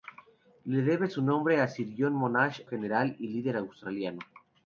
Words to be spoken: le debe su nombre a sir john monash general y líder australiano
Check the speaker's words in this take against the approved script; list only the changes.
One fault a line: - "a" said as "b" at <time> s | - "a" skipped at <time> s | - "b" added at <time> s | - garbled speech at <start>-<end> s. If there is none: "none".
none